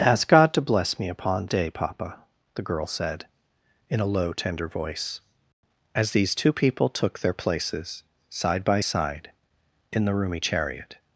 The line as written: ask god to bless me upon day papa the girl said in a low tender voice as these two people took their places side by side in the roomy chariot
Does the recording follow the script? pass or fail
pass